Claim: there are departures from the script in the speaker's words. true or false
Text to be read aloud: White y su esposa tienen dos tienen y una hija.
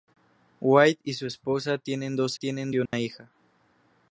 false